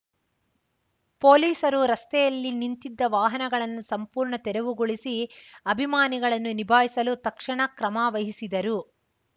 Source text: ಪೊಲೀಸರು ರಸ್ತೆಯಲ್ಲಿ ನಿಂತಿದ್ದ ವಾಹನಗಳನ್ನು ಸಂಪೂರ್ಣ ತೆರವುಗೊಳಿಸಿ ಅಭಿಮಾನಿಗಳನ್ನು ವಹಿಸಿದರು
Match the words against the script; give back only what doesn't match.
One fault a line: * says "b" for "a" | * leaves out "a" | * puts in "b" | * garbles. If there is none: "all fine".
* puts in "ನಿಭಾಯಿಸಲು ತಕ್ಷಣ ಕ್ರಮ"